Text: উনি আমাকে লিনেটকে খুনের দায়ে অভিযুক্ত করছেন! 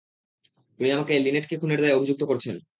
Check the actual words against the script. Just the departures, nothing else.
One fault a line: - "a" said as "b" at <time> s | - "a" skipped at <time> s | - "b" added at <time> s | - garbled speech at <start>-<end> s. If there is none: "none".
none